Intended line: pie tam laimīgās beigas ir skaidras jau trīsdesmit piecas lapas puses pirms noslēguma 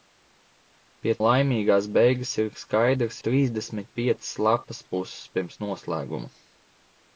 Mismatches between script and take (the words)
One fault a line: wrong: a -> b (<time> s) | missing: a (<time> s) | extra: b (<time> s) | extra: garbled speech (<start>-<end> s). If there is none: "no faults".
missing: tam (1.1 s)
missing: jau (3.2 s)